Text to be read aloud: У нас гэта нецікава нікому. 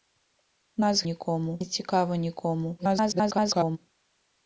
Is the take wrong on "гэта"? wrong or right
wrong